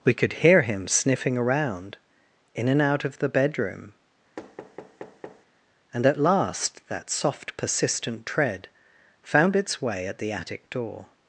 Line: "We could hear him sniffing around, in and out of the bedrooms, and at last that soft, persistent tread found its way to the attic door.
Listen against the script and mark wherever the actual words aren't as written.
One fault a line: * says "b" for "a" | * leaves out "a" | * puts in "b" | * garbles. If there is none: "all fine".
* says "bedroom" for "bedrooms"
* says "at" for "to"